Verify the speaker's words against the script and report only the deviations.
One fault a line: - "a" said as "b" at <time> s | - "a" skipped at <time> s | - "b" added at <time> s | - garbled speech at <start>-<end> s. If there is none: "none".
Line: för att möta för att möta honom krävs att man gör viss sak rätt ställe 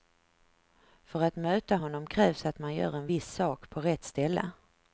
- "för att möta" skipped at 1.8 s
- "en" added at 2.9 s
- "på" added at 3.7 s